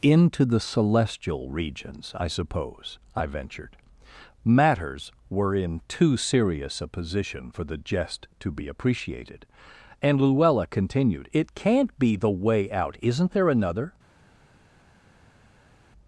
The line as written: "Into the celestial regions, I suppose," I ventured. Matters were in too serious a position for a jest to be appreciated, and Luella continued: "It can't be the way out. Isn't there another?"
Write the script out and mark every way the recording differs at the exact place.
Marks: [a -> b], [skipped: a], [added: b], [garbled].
"Into the celestial regions, I suppose," I ventured. Matters were in too serious a position for [a -> the] jest to be appreciated, and Luella continued: "It can't be the way out. Isn't there another?"